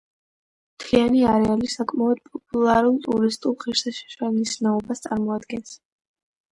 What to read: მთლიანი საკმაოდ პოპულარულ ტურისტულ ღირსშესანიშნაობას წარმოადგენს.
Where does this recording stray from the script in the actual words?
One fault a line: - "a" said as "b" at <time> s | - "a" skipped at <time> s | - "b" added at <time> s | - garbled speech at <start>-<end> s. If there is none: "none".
- "არეალი" added at 1.3 s